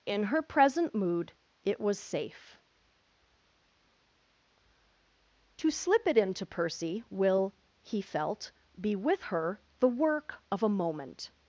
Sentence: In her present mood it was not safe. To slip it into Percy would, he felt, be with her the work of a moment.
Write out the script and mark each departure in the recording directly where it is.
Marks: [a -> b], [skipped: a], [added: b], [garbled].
In her present mood it was [skipped: not] safe. To slip it into Percy [would, -> will] he felt, be with her the work of a moment.